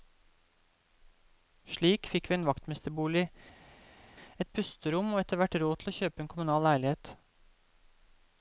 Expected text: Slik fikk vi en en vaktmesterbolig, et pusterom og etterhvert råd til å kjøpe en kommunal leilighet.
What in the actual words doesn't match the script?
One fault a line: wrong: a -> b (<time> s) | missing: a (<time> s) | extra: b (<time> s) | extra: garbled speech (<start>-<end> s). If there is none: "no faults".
missing: en (2.5 s)